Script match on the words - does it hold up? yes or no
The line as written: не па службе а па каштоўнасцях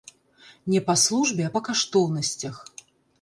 yes